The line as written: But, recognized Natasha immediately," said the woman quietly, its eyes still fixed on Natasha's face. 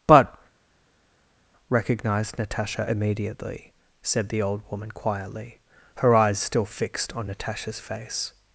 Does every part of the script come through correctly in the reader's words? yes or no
no